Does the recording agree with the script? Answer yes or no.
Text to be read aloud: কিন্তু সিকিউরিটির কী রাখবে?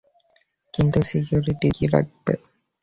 yes